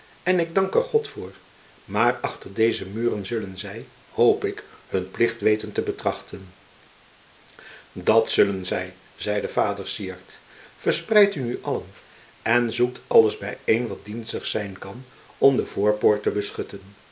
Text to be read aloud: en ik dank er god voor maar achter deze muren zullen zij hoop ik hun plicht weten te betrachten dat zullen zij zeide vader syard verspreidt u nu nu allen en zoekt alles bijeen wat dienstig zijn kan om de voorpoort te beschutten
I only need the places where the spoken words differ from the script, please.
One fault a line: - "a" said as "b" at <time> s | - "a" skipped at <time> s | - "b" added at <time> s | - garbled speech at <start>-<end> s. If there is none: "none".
- "nu" skipped at 11.6 s